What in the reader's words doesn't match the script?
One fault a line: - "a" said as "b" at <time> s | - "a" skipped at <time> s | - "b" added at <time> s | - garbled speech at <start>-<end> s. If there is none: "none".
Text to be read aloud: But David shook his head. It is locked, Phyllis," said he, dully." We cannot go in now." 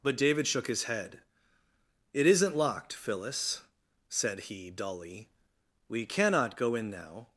- "is" said as "isn't" at 2.3 s